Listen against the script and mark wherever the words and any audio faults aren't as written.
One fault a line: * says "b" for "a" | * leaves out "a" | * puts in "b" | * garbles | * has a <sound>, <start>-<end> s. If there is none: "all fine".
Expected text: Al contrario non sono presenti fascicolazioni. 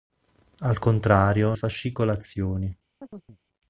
* leaves out "non sono presenti"
* has a chirp, 3.0-3.4 s